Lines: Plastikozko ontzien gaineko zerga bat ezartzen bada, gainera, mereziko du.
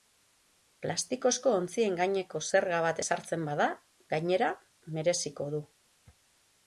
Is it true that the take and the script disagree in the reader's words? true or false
false